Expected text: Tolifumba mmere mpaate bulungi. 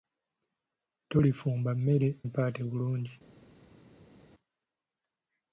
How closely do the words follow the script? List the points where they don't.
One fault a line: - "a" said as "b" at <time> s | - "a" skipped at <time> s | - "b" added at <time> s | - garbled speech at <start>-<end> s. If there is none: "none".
none